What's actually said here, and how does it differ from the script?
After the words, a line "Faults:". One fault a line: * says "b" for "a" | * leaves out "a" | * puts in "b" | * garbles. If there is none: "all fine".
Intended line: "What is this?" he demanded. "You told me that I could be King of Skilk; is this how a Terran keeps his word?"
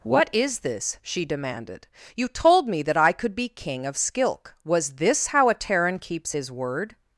"What is this?" she demanded. "You told me that I could be King of Skilk; was this how a Terran keeps his word?"
Faults:
* says "she" for "he"
* says "was" for "is"